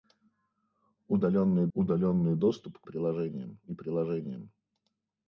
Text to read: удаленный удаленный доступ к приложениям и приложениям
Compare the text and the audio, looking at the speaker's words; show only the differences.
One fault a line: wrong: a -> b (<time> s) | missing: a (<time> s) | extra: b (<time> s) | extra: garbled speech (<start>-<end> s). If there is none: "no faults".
no faults